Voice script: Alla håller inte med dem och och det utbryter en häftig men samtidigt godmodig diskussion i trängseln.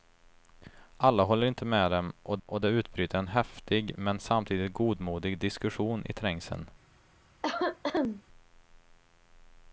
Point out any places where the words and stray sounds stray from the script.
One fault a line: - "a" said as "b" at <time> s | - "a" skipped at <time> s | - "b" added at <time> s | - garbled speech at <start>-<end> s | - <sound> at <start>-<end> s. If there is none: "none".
- cough at 7.4-8.2 s